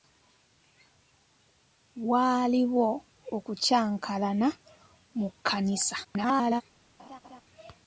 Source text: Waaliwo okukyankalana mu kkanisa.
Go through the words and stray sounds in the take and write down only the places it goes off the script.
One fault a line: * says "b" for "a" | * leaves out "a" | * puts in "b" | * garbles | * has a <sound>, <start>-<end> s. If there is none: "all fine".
* garbles
* has a laugh, 7.0-7.4 s